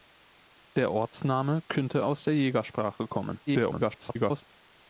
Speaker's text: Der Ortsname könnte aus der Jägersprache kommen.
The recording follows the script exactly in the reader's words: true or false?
false